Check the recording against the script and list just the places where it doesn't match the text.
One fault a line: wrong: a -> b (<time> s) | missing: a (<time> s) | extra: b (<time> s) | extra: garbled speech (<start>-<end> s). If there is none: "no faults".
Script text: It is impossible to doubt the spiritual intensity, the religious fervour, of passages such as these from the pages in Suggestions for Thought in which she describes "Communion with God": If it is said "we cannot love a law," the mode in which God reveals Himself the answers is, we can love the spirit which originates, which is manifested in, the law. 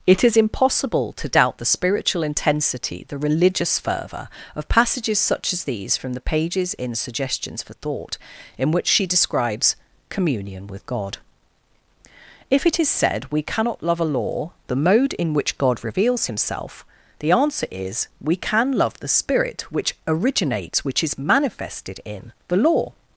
wrong: answers -> answer (17.3 s)